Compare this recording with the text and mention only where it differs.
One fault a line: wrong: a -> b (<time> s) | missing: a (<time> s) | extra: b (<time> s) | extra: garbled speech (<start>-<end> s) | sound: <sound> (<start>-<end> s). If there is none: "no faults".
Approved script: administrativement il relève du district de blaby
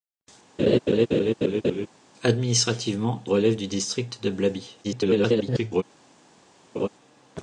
sound: laugh (0.6-1.9 s)
missing: il (3.2 s)
extra: garbled speech (4.8-5.8 s)
sound: laugh (6.7-6.9 s)